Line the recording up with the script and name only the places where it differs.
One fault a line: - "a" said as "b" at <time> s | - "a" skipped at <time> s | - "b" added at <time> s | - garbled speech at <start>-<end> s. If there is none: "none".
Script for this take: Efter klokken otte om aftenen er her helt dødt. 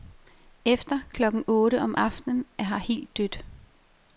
none